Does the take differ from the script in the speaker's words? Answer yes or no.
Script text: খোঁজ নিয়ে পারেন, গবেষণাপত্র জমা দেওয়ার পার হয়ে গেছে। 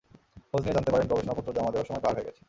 yes